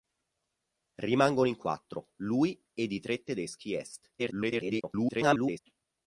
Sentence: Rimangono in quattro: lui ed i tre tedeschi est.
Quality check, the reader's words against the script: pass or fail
fail